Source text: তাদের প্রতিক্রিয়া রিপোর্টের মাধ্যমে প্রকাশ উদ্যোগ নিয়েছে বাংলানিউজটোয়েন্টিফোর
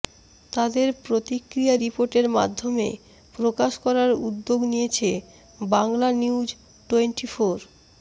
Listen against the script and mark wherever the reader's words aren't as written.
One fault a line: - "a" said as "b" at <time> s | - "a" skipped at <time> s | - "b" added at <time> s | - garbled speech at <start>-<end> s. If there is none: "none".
- "করার" added at 3.9 s